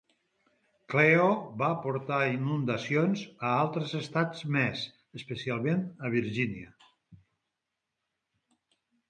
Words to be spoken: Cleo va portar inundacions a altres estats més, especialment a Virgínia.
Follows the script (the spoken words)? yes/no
yes